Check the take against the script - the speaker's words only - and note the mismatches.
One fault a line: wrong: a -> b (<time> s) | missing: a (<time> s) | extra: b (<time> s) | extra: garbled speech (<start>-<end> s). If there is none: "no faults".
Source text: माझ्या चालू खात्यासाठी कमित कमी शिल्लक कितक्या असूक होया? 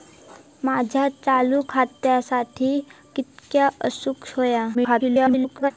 missing: कमित कमी शिल्लक (2.8 s)
extra: garbled speech (4.7-5.7 s)